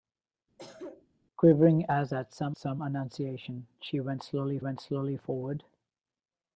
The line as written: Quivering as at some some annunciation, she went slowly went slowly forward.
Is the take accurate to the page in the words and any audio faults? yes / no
no